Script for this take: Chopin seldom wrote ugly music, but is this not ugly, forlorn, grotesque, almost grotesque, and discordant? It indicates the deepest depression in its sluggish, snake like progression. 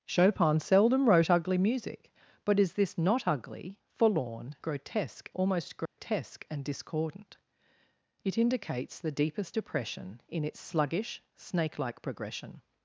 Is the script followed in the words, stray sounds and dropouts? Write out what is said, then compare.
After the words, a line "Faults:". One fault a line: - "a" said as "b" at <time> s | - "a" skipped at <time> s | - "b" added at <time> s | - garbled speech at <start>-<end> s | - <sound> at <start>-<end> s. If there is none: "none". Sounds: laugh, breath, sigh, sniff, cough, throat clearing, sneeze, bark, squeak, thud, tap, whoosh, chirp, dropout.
Chopin seldom wrote ugly music, but is this not ugly, forlorn, grotesque, almost grotesque, and discordant? It indicates the deepest depression in its sluggish, snake like progression.
Faults:
- dropout at 5.9-6.0 s